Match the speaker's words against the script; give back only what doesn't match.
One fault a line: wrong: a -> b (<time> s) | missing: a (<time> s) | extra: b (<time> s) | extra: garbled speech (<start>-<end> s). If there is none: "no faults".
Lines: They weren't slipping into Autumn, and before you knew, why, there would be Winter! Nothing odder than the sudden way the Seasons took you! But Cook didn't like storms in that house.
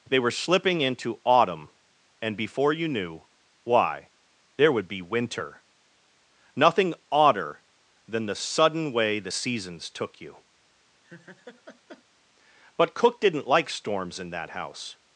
wrong: weren't -> were (0.2 s)